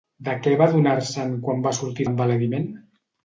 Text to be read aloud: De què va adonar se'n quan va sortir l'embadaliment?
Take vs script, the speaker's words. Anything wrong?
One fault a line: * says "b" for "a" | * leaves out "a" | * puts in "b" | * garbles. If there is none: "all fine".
all fine